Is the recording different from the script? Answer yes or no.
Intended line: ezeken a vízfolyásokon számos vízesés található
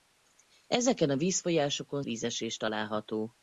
yes